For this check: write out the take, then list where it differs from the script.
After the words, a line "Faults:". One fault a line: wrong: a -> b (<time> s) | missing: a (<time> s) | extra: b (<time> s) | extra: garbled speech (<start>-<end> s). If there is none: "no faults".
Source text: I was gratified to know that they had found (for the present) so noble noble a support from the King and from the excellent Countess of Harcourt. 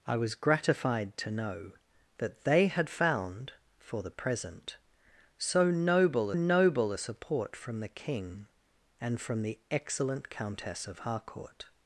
I was gratified to know that they had found (for the present) so noble noble a support from the King and from the excellent Countess of Harcourt.
Faults:
no faults